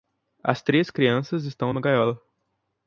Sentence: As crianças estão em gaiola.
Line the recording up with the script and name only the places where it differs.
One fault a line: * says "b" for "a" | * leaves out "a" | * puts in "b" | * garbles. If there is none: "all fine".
* puts in "três"
* puts in "uma"